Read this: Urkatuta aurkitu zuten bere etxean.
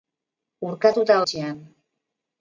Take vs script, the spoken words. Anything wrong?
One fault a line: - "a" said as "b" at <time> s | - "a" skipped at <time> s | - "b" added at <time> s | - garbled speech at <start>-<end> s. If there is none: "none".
- "aurkitu zuten bere" skipped at 1.2 s